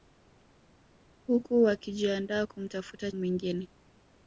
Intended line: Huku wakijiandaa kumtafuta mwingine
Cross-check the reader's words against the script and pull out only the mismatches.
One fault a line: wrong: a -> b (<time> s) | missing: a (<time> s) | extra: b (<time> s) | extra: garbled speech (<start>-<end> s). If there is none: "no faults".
no faults